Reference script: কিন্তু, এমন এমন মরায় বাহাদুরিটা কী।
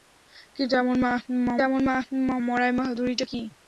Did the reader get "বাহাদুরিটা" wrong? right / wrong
right